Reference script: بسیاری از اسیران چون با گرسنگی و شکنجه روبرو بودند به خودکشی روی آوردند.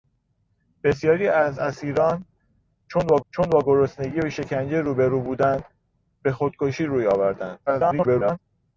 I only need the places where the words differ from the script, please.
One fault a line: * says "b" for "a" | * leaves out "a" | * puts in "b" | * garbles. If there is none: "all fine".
* puts in "چون با"
* garbles